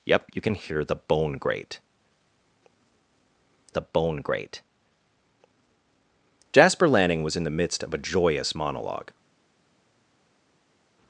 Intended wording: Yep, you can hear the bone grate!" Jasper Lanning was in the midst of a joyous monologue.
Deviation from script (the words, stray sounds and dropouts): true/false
true